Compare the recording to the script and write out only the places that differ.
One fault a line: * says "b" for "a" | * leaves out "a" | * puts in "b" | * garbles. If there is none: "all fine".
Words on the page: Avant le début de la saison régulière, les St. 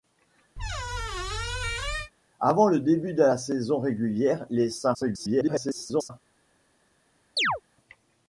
* garbles